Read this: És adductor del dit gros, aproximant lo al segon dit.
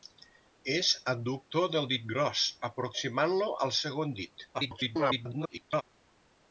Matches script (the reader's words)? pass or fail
fail